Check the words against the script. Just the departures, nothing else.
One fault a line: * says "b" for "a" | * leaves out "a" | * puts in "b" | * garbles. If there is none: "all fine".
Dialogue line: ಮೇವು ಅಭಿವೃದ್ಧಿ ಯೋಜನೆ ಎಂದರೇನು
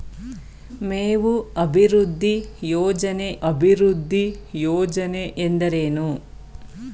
* puts in "ಅಭಿವೃದ್ಧಿ ಯೋಜನೆ"